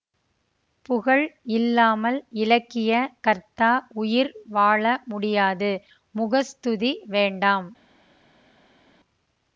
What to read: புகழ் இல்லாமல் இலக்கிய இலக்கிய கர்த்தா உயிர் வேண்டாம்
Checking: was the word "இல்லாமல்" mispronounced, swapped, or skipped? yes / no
no